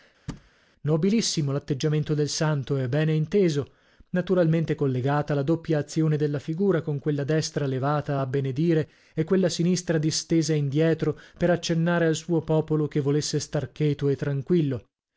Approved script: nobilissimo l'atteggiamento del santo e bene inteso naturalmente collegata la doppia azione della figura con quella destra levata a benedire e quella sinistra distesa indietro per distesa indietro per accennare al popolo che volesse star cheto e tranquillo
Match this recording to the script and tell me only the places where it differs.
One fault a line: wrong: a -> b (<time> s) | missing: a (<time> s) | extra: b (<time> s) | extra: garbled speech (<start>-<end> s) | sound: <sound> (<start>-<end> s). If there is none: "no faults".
sound: thud (0.3-0.5 s)
missing: distesa indietro per (11.5 s)
extra: suo (12.2 s)